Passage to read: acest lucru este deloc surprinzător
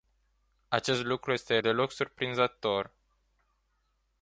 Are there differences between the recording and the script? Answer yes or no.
no